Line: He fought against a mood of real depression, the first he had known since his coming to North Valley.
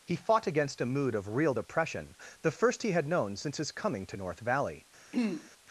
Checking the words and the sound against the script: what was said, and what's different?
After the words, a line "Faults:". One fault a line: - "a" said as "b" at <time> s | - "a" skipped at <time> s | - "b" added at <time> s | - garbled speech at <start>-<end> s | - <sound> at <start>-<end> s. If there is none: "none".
He fought against a mood of real depression, the first he had known since his coming to North Valley.
Faults:
- throat clearing at 5.1-5.5 s